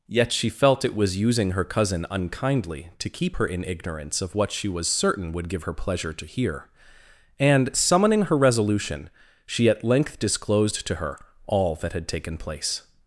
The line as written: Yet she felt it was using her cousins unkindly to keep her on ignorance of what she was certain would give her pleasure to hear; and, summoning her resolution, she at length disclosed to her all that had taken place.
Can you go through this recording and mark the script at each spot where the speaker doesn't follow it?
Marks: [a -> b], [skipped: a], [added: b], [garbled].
Yet she felt it was using her [cousins -> cousin] unkindly to keep her [on -> in] ignorance of what she was certain would give her pleasure to hear; and, summoning her resolution, she at length disclosed to her all that had taken place.